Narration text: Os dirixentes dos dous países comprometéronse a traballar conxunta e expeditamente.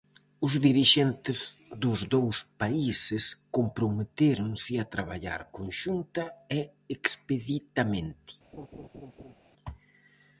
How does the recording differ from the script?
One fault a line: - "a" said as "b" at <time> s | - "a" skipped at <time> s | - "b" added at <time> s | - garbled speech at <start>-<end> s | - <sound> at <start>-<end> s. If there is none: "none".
- laugh at 8.5-9.3 s